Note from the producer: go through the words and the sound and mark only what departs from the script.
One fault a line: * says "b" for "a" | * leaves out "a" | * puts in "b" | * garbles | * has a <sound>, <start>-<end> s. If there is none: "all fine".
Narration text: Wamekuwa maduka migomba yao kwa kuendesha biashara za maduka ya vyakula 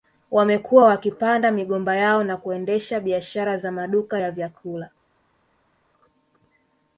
* says "wakipanda" for "maduka"
* says "na" for "kwa"